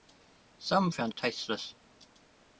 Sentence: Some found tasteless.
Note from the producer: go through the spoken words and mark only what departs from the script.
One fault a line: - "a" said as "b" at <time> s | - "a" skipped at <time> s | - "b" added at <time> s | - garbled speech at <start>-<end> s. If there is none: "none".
none